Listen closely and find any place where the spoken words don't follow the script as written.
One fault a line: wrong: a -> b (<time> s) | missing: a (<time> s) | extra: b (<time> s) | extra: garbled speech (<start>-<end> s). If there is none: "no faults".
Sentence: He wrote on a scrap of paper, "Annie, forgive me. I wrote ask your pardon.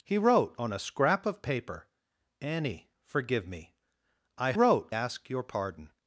no faults